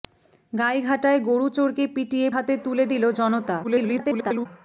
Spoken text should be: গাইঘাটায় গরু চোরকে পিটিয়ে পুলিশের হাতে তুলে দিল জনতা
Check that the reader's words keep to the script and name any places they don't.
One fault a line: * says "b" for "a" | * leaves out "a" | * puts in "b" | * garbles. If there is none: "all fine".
* leaves out "পুলিশের"
* garbles